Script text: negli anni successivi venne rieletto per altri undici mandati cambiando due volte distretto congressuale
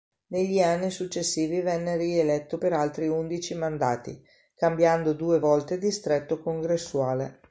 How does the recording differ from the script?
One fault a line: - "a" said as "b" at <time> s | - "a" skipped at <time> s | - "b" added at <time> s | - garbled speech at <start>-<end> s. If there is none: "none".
none